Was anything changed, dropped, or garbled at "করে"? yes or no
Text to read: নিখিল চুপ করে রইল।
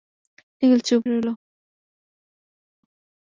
yes